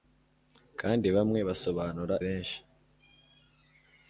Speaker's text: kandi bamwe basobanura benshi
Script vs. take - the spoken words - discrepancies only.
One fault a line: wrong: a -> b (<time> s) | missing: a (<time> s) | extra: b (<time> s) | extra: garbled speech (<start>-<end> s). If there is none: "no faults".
no faults